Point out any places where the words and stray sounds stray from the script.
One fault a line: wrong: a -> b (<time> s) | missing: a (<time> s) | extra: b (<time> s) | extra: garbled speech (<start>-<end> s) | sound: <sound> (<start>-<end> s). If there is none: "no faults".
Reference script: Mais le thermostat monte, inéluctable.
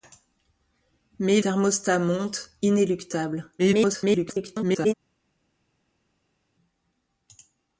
missing: le (1.4 s)
extra: garbled speech (3.6-4.9 s)